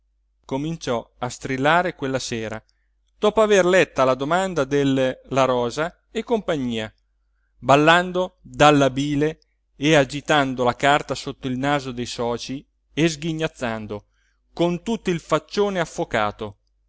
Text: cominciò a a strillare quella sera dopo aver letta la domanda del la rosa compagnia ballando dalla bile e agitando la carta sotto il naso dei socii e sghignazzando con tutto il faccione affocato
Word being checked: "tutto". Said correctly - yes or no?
yes